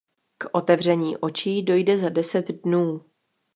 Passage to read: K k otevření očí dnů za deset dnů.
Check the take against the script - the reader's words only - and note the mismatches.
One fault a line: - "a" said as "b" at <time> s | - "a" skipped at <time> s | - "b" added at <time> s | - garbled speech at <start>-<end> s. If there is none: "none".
- "k" skipped at 0.5 s
- "dnů" said as "dojde" at 1.6 s